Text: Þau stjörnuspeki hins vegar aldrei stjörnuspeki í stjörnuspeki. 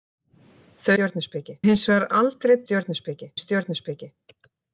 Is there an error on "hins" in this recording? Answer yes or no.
no